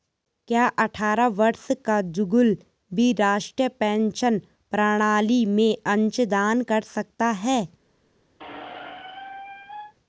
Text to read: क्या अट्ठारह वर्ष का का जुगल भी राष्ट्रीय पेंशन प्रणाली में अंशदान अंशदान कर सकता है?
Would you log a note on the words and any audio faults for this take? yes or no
yes